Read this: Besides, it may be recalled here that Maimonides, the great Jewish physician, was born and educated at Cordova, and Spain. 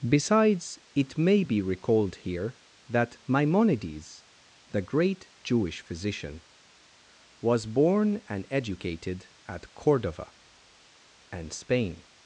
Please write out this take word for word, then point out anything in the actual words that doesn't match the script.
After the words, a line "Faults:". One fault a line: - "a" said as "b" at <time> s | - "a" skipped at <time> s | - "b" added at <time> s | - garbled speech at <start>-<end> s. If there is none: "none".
Besides, it may be recalled here that Maimonides, the great Jewish physician, was born and educated at Cordova, and Spain.
Faults:
none